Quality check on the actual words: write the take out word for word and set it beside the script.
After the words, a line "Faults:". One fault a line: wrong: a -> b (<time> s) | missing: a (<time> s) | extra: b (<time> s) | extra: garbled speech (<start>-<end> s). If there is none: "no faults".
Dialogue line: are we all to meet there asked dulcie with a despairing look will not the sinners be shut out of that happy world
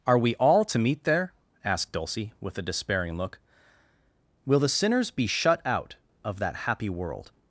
are we all to meet there asked dulcie with a despairing look will the sinners be shut out of that happy world
Faults:
missing: not (4.6 s)